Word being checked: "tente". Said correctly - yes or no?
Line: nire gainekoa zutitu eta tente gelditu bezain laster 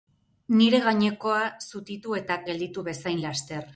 no